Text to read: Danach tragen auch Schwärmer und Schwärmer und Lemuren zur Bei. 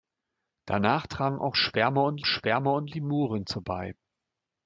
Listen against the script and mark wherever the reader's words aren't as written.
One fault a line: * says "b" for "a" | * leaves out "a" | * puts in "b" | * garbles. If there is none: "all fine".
all fine